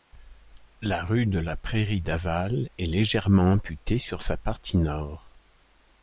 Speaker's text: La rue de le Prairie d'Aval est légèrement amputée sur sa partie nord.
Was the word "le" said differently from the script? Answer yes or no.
yes